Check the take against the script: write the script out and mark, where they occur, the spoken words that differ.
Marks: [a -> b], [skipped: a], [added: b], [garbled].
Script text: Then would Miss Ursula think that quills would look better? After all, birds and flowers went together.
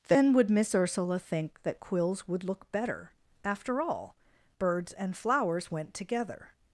Then would Miss Ursula think that quills would look better? After all, birds and flowers went together.